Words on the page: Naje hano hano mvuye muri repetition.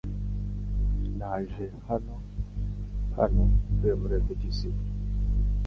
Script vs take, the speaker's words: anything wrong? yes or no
no